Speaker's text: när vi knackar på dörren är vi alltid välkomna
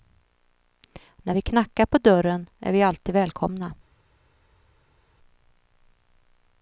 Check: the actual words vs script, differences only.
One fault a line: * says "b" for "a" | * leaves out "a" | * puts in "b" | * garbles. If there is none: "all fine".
all fine